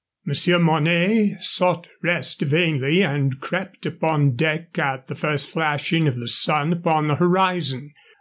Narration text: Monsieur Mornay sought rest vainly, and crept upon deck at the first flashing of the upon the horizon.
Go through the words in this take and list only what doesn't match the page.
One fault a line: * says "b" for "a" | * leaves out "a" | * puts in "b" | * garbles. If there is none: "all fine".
* puts in "sun"